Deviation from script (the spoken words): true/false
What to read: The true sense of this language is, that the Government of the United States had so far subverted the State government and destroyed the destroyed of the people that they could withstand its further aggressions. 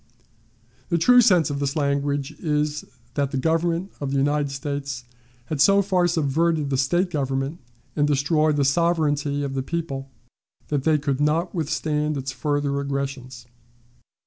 true